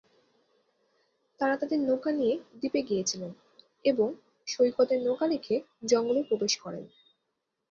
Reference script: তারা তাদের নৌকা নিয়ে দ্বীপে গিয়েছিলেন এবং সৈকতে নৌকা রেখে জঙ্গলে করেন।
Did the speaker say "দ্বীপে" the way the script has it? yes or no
yes